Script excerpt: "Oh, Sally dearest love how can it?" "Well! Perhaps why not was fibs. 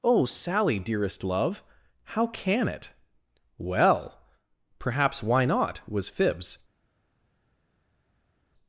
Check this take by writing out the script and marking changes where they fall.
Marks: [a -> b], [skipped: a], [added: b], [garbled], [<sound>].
"Oh, Sally dearest love how can it?" "Well! Perhaps why not was fibs.